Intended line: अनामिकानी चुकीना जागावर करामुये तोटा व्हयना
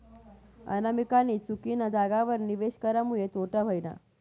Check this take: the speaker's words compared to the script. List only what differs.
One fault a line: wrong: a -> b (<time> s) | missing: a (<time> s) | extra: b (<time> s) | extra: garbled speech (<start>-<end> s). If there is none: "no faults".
extra: निवेश (2.4 s)